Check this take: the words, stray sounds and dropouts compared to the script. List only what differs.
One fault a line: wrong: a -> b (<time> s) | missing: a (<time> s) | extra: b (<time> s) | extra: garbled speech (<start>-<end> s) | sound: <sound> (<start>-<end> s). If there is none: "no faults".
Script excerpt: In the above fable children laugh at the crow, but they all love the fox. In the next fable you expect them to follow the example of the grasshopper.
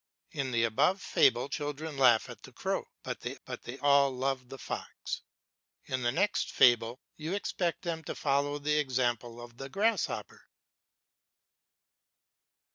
extra: but they (3.5 s)